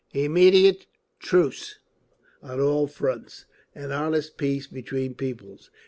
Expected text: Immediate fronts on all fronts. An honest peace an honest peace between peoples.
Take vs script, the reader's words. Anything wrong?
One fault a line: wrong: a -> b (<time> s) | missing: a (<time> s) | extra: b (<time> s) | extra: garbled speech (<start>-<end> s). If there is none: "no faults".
wrong: fronts -> truce (1.2 s)
missing: an honest peace (4.7 s)